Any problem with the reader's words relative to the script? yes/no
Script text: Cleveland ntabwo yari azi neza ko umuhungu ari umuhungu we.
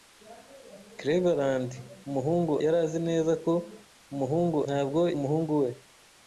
yes